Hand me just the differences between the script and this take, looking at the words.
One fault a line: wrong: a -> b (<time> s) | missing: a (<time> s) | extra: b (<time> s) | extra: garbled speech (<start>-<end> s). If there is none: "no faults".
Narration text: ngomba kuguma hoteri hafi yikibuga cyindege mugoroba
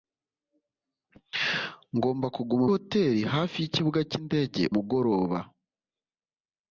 no faults